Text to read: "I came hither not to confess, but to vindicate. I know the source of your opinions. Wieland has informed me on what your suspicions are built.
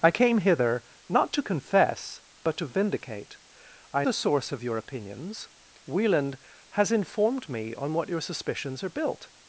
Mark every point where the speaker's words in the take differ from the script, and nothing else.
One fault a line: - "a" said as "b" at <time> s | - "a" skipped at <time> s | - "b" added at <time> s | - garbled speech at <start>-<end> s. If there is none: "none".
- "know" skipped at 4.1 s